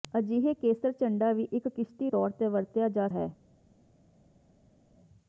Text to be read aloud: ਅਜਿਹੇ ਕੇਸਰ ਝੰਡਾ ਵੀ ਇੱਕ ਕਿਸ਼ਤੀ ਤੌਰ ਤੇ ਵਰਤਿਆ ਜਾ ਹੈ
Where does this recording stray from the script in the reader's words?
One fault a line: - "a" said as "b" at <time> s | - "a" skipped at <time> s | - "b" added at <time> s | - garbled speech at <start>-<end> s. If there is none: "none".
none